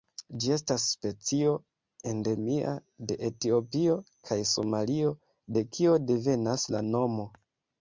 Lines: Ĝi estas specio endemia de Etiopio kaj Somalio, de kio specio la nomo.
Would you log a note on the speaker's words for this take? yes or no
yes